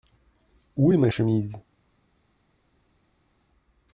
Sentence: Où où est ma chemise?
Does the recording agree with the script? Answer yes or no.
no